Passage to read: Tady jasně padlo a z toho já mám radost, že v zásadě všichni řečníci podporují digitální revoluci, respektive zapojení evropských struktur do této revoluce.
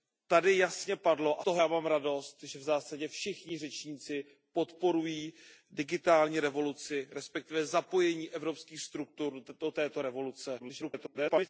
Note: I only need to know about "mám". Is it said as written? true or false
true